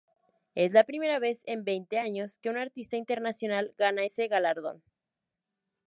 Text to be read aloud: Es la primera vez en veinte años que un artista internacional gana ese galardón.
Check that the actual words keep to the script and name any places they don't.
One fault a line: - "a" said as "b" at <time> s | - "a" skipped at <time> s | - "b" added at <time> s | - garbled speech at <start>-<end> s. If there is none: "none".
none